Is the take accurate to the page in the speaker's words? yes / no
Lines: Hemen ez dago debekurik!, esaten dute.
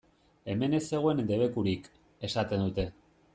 no